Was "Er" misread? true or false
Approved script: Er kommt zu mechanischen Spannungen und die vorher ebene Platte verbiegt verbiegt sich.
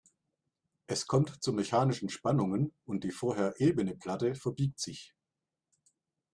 true